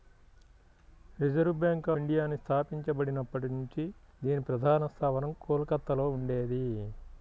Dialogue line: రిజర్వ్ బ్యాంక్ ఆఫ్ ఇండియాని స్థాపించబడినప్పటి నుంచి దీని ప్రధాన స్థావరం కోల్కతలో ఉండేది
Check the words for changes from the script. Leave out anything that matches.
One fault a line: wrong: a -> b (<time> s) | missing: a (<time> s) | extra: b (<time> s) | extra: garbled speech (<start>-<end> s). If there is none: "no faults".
missing: ఆఫ్ (1.9 s)